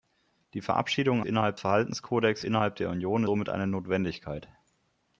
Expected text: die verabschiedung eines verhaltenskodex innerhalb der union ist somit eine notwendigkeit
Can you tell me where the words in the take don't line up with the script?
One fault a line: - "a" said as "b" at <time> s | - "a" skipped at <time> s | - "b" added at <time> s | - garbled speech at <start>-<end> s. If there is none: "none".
- "eines" said as "innerhalb" at 1.2 s
- "ist" skipped at 3.2 s